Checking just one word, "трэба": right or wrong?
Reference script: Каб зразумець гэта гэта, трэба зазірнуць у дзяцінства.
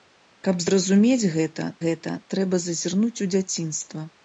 right